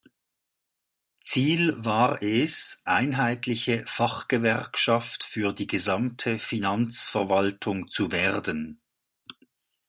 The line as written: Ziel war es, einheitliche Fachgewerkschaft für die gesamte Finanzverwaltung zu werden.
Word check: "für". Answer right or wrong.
right